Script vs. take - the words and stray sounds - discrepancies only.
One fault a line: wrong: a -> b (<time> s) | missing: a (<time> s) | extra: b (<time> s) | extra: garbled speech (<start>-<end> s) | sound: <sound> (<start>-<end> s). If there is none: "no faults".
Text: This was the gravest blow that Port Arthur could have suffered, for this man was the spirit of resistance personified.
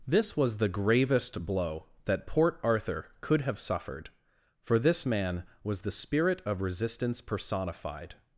no faults